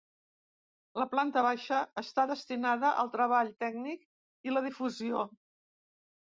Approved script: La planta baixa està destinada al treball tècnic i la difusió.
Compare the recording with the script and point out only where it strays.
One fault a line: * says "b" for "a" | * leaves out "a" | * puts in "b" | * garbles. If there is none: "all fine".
all fine